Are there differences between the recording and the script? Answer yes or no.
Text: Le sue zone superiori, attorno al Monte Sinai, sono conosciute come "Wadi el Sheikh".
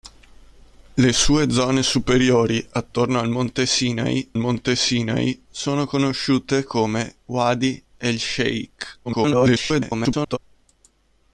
yes